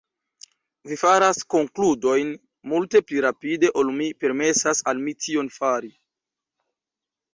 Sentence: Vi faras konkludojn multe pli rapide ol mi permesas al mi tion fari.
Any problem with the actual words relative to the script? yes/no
no